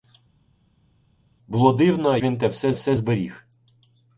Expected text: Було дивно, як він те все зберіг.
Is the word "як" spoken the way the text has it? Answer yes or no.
no